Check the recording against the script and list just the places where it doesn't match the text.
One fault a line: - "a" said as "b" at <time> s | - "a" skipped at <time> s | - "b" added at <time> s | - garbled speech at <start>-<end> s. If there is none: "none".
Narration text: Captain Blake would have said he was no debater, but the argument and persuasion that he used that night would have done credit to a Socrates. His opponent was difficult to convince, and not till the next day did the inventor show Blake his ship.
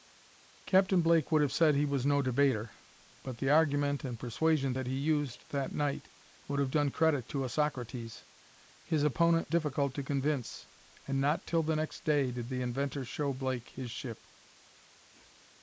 - "was" skipped at 9.5 s